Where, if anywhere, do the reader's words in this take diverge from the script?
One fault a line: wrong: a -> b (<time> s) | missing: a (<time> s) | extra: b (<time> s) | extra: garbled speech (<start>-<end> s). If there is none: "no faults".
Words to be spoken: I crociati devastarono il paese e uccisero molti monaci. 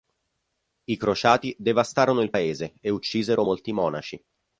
no faults